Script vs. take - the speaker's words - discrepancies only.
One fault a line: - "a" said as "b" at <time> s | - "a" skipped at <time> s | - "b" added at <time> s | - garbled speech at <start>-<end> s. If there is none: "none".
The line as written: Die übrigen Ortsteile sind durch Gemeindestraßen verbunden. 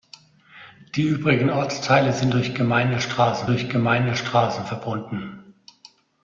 - "durch Gemeindestraßen" added at 3.5 s